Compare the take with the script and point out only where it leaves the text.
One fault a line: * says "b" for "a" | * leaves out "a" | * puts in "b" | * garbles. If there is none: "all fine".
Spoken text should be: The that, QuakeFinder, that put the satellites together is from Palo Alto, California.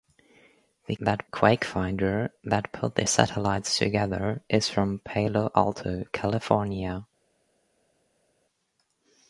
all fine